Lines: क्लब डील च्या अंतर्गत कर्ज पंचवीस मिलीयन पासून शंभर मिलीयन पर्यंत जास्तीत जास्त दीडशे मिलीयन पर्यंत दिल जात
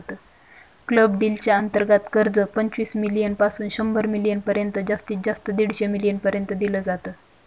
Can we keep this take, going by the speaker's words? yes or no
yes